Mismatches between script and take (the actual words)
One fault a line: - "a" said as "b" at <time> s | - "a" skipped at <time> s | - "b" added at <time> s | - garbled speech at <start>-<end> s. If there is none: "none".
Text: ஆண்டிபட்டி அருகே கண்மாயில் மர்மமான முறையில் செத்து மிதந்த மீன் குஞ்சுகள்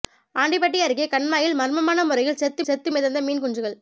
- "செத்து" added at 2.7 s